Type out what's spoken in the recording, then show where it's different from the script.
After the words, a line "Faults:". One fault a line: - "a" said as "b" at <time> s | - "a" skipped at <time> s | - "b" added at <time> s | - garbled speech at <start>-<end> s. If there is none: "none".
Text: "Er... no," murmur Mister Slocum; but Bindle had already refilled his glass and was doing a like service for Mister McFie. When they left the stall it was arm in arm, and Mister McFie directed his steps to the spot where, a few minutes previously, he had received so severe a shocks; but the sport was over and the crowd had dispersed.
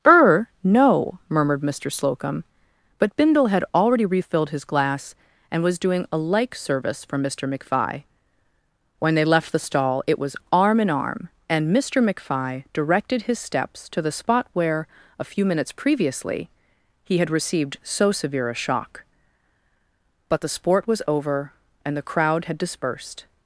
"Er... no," murmured Mister Slocum; but Bindle had already refilled his glass and was doing a like service for Mister McFie. When they left the stall it was arm in arm, and Mister McFie directed his steps to the spot where, a few minutes previously, he had received so severe a shock; but the sport was over and the crowd had dispersed.
Faults:
- "murmur" said as "murmured" at 1.3 s
- "shocks" said as "shock" at 18.6 s